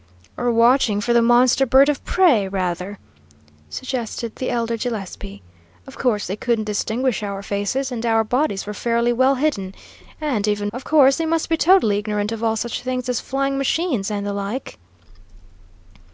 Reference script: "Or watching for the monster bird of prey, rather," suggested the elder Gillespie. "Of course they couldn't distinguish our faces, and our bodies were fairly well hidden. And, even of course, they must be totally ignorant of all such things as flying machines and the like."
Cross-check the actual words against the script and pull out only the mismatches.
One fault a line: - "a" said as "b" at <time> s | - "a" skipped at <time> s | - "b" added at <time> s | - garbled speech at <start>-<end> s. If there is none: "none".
none